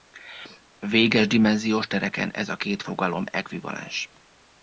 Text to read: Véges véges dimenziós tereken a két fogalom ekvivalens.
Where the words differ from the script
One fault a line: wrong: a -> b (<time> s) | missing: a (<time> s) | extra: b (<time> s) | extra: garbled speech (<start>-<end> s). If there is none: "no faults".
missing: véges (1.3 s)
extra: ez (2.3 s)